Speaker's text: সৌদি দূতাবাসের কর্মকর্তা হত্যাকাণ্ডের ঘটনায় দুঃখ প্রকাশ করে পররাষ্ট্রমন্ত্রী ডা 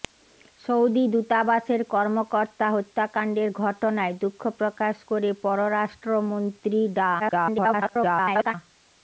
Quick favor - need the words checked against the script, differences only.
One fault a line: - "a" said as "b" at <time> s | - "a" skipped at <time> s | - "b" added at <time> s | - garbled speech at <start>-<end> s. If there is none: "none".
- garbled speech at 7.2-8.5 s